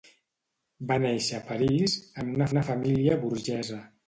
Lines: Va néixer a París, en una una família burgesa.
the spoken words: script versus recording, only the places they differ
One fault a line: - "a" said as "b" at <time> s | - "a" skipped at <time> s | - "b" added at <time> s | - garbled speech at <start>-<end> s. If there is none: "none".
none